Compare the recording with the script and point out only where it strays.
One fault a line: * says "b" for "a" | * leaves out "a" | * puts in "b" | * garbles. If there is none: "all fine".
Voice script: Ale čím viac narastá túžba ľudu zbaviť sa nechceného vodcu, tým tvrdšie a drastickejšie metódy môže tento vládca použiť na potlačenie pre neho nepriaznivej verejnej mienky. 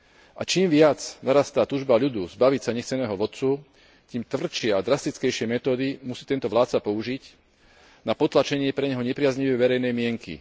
* says "A" for "Ale"
* says "musí" for "môže"